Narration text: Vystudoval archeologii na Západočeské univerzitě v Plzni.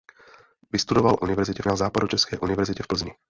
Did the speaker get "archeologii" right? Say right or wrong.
wrong